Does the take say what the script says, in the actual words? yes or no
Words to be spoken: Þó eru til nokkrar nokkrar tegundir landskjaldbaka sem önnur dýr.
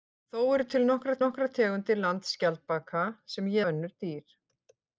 yes